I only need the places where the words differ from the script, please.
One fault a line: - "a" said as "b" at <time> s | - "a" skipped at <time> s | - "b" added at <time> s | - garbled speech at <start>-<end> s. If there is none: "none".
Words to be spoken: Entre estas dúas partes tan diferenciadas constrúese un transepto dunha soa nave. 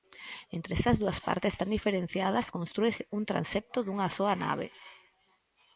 none